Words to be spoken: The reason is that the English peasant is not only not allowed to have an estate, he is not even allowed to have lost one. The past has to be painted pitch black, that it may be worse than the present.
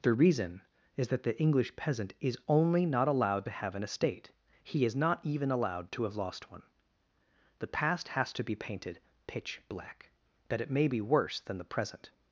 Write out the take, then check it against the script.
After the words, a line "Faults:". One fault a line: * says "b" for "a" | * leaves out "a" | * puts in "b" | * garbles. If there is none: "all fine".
The reason is that the English peasant is only not allowed to have an estate, he is not even allowed to have lost one. The past has to be painted pitch black, that it may be worse than the present.
Faults:
* leaves out "not"